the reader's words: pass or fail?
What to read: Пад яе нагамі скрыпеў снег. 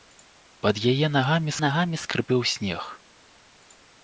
fail